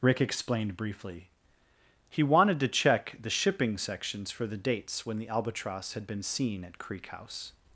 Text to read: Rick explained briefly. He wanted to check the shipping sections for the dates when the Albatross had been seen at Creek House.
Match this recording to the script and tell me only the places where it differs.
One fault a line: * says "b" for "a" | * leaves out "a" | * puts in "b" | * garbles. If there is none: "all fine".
all fine